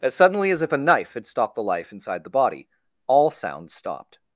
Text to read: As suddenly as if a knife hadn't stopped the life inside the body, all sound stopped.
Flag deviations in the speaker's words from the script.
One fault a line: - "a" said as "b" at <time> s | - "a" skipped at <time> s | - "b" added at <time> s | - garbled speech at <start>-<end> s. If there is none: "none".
- "hadn't" said as "had" at 1.1 s